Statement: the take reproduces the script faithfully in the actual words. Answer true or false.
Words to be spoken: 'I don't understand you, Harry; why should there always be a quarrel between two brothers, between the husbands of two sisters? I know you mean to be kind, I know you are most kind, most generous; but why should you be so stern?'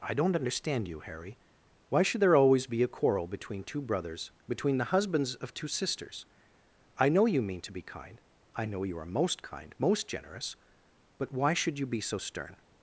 true